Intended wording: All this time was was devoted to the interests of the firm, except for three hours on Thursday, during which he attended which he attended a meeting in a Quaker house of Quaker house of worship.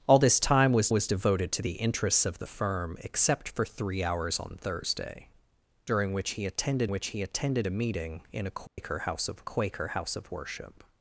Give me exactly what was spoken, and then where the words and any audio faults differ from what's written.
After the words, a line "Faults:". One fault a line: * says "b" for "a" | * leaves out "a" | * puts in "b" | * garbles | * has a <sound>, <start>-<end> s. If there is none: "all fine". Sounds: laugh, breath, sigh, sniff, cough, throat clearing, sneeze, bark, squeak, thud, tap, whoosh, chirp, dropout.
All this time was was devoted to the interests of the firm, except for three hours on Thursday, during which he attended which he attended a meeting in a Quaker house of Quaker house of worship.
Faults:
* has a dropout, 8.7-8.8 s